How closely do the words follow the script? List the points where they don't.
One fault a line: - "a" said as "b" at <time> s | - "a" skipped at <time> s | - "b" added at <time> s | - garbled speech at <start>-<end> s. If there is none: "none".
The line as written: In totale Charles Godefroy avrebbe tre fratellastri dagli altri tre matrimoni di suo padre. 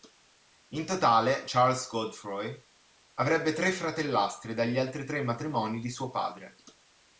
none